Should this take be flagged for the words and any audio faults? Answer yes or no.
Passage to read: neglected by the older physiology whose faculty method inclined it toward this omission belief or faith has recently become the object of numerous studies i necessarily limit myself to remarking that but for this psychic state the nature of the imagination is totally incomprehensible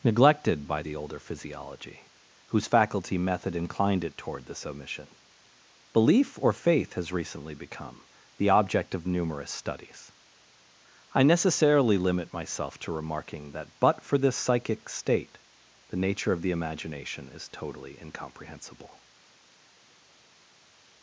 no